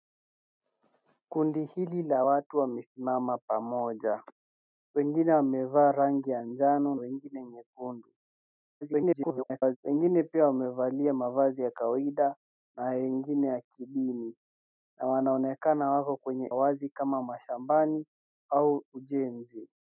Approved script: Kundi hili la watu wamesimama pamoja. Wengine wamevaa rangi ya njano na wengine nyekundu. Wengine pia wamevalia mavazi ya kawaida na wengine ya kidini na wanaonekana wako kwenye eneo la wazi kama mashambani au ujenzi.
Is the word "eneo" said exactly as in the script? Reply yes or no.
no